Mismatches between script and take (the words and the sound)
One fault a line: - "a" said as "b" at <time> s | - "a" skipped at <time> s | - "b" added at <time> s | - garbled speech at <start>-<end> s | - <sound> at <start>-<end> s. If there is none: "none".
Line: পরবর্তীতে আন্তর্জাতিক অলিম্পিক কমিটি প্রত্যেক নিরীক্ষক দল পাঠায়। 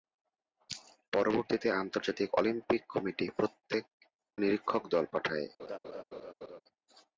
- laugh at 5.6-6.6 s